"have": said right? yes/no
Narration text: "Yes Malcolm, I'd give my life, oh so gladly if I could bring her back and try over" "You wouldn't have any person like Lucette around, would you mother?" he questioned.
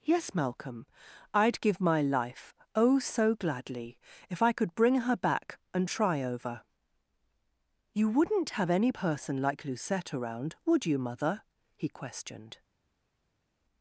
yes